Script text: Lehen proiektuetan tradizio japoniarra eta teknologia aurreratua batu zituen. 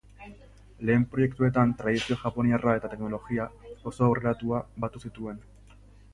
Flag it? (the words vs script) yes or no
yes